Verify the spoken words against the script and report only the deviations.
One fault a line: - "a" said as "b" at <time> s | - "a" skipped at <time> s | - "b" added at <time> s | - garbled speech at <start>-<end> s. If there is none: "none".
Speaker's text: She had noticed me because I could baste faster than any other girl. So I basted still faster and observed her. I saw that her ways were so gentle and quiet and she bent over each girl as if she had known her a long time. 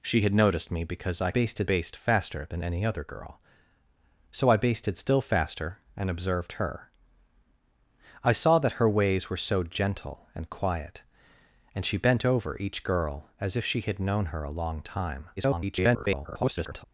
- "could" said as "basted" at 1.3 s
- garbled speech at 15.4-16.9 s